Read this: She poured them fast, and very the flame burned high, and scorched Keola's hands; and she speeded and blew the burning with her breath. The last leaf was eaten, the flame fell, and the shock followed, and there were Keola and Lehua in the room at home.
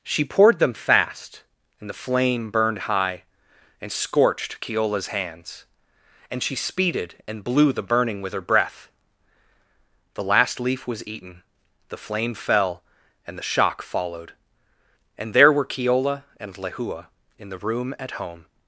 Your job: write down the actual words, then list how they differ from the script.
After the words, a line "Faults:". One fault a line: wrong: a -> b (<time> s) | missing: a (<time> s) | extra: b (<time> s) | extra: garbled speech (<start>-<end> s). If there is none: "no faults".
She poured them fast, and the flame burned high, and scorched Keola's hands; and she speeded and blew the burning with her breath. The last leaf was eaten, the flame fell, and the shock followed, and there were Keola and Lehua in the room at home.
Faults:
missing: very (1.9 s)